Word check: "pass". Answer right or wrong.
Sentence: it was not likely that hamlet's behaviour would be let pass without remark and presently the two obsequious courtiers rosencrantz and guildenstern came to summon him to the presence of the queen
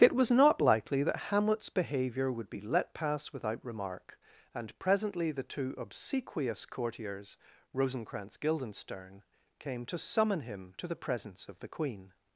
right